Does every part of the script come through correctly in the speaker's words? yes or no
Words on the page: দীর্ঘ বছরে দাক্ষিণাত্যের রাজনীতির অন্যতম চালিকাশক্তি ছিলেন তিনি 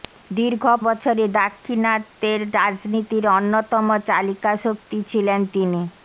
yes